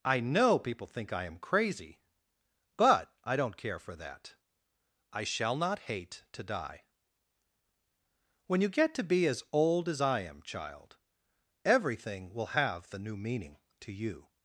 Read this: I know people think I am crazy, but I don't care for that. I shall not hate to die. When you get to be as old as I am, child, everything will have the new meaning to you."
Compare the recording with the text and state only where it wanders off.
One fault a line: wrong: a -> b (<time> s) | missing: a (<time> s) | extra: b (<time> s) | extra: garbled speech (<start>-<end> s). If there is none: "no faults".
no faults